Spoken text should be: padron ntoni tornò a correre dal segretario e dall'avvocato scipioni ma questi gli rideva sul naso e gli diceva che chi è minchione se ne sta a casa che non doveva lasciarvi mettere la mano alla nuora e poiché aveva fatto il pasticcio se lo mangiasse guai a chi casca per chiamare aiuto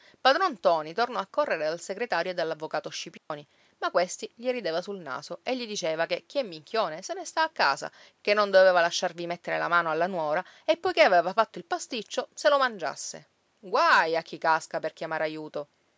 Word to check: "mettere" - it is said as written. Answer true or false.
true